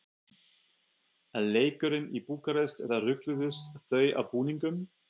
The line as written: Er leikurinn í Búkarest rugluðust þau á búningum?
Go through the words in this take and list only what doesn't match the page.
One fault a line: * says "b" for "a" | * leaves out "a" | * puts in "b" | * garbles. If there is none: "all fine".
* puts in "eða"